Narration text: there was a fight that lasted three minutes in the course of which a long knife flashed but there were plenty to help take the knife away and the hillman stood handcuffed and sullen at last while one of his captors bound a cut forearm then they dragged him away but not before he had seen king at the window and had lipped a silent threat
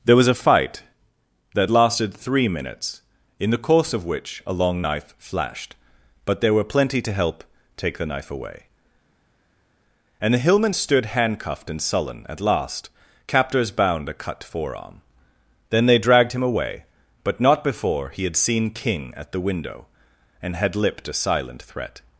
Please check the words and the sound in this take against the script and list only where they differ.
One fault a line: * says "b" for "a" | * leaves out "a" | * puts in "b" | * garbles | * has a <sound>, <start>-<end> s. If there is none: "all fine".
* leaves out "while one of his"